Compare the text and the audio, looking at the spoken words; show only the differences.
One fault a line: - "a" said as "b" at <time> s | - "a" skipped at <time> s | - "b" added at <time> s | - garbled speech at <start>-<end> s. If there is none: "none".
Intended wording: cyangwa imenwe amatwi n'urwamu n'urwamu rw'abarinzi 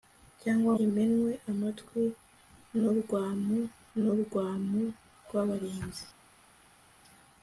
none